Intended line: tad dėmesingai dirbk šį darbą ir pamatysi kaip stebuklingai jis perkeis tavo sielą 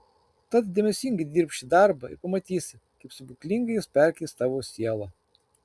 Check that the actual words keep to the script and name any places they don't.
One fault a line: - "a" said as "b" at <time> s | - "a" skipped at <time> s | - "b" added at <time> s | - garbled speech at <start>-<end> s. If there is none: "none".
none